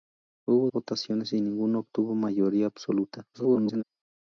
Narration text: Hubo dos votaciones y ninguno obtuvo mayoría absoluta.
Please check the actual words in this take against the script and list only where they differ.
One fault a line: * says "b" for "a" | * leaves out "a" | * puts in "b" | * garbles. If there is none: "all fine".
* leaves out "dos"
* garbles